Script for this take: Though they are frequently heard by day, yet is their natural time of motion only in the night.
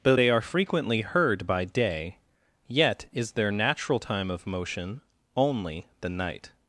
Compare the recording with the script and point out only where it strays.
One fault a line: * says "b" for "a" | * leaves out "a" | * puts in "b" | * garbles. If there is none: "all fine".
* leaves out "in"